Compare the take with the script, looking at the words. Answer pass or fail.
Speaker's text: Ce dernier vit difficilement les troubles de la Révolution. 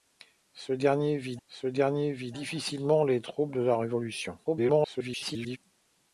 fail